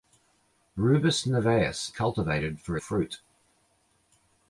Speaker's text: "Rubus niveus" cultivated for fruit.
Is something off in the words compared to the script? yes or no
no